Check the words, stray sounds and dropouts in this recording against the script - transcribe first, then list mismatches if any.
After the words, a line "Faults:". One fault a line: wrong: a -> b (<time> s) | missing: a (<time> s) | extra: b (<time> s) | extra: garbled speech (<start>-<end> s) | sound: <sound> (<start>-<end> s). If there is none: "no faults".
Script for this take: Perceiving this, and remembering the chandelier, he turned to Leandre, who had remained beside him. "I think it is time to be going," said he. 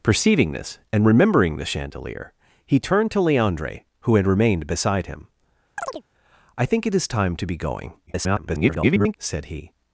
Perceiving this, and remembering the chandelier, he turned to Leandre, who had remained beside him. "I think it is time to be going," [garbled] said he.
Faults:
sound: chirp (5.8-6.0 s)
extra: garbled speech (8.1-9.2 s)